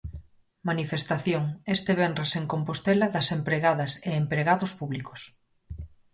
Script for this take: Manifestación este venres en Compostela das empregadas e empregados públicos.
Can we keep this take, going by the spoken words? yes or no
yes